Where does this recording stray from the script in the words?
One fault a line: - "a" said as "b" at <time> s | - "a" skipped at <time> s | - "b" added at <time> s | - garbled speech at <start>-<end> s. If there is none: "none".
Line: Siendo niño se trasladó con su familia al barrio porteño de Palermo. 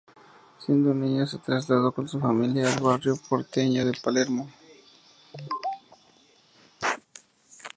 none